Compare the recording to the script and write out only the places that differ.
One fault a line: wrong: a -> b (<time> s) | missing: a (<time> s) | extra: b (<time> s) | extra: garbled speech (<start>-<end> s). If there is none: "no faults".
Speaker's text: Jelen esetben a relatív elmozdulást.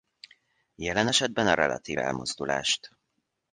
no faults